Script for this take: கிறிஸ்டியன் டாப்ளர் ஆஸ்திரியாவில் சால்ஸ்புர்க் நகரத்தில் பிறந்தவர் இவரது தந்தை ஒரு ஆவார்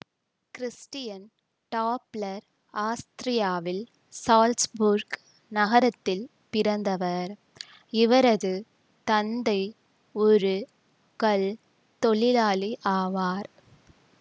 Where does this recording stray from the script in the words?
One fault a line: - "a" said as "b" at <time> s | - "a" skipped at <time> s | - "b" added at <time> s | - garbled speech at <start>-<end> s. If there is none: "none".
- "கல் தொழிலாளி" added at 11.2 s